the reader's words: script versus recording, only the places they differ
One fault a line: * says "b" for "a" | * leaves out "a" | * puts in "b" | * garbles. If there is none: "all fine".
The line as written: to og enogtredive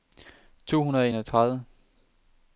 * puts in "hundrede"